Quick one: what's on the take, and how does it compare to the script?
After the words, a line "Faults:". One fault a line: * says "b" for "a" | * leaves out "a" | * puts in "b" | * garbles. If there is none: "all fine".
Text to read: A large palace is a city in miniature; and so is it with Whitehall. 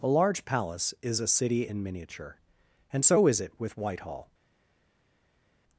A large palace is a city in miniature; and so is it with Whitehall.
Faults:
all fine